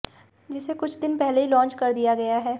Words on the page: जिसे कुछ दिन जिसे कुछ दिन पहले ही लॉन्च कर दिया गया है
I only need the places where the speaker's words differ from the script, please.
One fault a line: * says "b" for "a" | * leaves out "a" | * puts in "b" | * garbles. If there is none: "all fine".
* leaves out "जिसे कुछ दिन"